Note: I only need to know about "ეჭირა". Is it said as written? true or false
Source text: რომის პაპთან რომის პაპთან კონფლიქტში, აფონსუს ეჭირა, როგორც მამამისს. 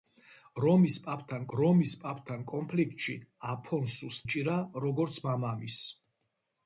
true